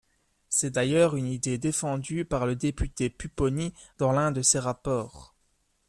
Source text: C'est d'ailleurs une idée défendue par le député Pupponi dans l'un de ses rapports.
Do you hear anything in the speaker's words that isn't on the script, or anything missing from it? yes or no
no